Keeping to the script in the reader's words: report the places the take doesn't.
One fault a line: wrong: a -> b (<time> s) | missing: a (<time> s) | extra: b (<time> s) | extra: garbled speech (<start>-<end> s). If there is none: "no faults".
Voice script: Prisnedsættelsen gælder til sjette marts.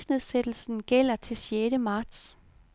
no faults